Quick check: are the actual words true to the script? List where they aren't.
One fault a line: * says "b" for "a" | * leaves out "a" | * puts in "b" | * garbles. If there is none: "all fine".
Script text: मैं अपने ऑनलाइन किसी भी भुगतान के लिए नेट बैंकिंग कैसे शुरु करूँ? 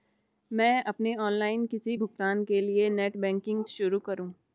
* leaves out "भी"
* leaves out "कैसे"